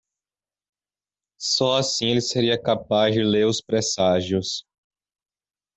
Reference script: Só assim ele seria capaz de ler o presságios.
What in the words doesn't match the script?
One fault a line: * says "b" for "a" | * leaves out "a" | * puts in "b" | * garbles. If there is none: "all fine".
* says "os" for "o"